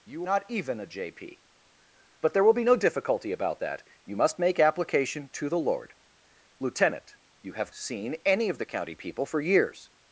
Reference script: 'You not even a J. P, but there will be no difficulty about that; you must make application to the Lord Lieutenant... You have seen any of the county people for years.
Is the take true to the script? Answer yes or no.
yes